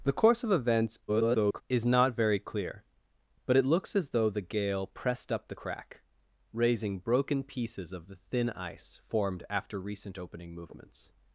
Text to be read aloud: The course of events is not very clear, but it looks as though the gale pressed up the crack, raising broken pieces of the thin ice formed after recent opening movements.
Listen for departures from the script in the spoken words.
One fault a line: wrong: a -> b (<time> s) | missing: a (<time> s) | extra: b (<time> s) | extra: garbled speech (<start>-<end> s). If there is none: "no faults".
extra: garbled speech (1.1-1.6 s)